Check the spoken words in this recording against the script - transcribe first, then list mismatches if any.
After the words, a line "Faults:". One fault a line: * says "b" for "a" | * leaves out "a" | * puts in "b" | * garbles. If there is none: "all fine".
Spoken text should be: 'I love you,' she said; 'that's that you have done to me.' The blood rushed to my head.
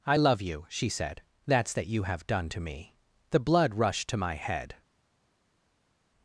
'I love you,' she said; 'that's that you have done to me.' The blood rushed to my head.
Faults:
all fine